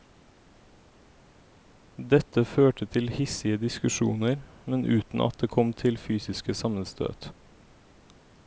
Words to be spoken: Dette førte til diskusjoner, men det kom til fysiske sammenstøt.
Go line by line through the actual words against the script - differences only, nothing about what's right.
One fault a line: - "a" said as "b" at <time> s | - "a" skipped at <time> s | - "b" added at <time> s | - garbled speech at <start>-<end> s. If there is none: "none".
- "hissige" added at 3.1 s
- "uten at" added at 4.9 s